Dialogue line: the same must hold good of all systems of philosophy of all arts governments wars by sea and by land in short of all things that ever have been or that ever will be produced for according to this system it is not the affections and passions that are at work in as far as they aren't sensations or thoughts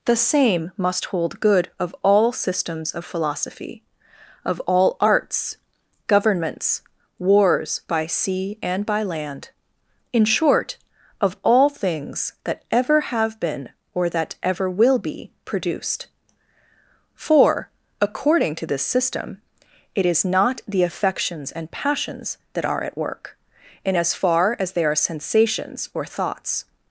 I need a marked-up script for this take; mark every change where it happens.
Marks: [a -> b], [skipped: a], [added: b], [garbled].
the same must hold good of all systems of philosophy of all arts governments wars by sea and by land in short of all things that ever have been or that ever will be produced for according to this system it is not the affections and passions that are at work in as far as they [aren't -> are] sensations or thoughts